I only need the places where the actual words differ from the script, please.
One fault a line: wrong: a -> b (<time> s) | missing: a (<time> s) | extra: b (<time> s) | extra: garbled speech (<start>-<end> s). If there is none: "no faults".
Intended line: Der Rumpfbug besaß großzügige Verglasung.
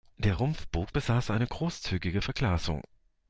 extra: eine (1.3 s)